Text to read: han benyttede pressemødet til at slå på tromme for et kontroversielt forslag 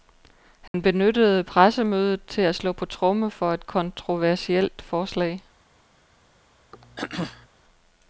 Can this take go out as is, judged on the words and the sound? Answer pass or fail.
fail